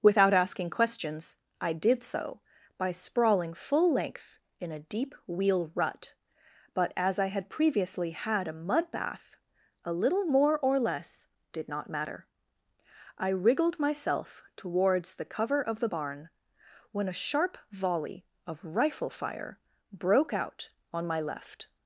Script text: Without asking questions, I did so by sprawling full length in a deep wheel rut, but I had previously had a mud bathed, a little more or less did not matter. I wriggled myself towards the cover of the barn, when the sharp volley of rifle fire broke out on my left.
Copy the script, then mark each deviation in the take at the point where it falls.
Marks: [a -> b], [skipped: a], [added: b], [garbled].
Without asking questions, I did so by sprawling full length in a deep wheel rut, but [added: as] I had previously had a mud [bathed, -> bath] a little more or less did not matter. I wriggled myself towards the cover of the barn, when [the -> a] sharp volley of rifle fire broke out on my left.